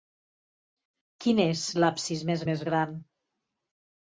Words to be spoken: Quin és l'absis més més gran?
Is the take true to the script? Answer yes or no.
yes